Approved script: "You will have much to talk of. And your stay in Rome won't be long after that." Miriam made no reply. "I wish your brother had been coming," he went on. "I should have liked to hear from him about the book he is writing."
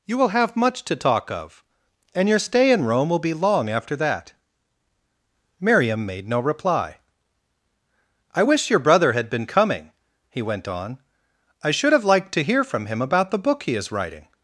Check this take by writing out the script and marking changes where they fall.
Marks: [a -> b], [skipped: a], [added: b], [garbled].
"You will have much to talk of. And your stay in Rome [won't -> will] be long after that." Miriam made no reply. "I wish your brother had been coming," he went on. "I should have liked to hear from him about the book he is writing."